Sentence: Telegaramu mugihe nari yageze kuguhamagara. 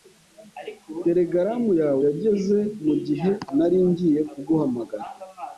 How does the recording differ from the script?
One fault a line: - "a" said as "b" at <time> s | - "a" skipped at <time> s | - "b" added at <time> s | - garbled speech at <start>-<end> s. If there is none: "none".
- "yawe yageze" added at 1.8 s
- "yageze" said as "ngiye" at 3.9 s